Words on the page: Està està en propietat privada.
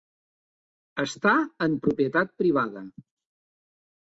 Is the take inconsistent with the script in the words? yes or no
yes